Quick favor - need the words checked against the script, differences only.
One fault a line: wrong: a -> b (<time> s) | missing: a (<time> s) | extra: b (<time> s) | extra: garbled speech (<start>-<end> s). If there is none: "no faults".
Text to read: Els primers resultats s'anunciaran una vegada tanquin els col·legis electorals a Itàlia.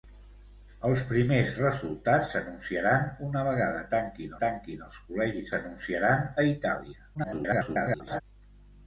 extra: tanquin (4.4 s)
wrong: electorals -> s'anunciaran (5.5 s)
extra: garbled speech (7.1-8.2 s)